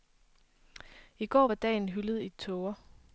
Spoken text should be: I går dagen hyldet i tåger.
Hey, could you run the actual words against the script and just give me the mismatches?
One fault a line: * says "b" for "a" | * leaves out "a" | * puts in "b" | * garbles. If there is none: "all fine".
* puts in "var"